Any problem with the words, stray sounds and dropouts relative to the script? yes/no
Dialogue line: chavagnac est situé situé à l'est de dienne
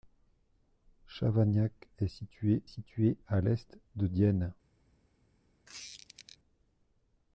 yes